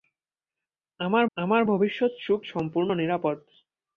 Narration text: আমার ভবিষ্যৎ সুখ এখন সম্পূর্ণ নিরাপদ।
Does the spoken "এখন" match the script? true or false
false